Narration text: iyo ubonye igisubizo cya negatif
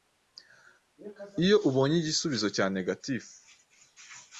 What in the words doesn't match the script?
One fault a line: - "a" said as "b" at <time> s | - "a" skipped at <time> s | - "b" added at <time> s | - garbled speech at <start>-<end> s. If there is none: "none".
none